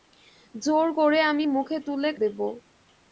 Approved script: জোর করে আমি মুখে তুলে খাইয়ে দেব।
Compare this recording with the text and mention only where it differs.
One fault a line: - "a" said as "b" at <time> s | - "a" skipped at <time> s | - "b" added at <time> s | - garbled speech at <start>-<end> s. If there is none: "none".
- "খাইয়ে" skipped at 2.1 s